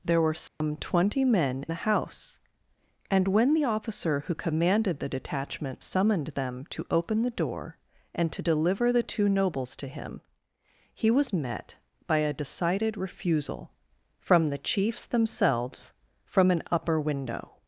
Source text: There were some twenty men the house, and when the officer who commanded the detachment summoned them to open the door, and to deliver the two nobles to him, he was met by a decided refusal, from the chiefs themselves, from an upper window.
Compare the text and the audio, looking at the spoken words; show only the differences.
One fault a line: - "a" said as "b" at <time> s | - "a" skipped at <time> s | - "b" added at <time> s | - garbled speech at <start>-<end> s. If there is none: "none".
none